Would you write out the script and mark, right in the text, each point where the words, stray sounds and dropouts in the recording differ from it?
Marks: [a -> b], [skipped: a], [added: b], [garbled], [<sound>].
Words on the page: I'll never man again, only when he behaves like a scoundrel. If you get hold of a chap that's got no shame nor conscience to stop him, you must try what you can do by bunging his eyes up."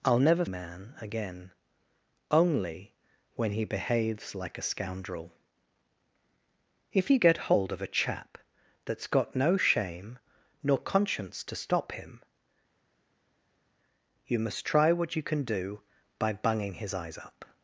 I'll never man again, only when he behaves like a scoundrel. If you get hold of a chap that's got no shame nor conscience to stop him, you must try what you can do by bunging his eyes up."